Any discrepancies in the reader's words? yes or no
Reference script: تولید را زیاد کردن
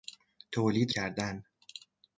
yes